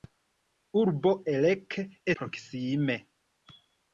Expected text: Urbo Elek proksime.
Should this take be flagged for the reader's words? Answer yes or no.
no